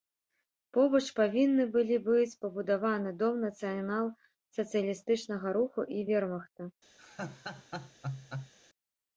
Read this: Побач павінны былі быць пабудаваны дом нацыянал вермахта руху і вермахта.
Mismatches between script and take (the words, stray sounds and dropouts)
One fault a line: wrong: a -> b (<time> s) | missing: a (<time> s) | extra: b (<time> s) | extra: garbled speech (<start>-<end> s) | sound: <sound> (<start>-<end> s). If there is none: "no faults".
wrong: вермахта -> сацыялістычнага (4.6 s)
sound: laugh (7.0-8.5 s)